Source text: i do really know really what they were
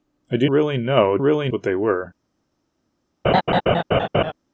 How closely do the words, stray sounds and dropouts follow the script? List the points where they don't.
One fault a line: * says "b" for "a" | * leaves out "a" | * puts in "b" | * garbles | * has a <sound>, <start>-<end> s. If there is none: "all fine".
* has a laugh, 3.2-4.3 s